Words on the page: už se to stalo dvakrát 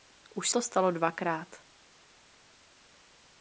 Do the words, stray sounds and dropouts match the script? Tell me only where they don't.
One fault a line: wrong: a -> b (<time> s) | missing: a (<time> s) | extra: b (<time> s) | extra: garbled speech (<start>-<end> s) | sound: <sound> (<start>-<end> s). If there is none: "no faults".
missing: se (0.5 s)